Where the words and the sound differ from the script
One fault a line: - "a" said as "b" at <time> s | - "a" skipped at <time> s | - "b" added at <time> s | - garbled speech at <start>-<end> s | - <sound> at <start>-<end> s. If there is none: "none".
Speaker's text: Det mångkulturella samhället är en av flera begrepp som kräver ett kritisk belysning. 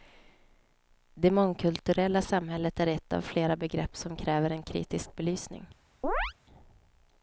- "en" said as "ett" at 2.9 s
- "ett" said as "en" at 4.5 s
- chirp at 6.0-6.3 s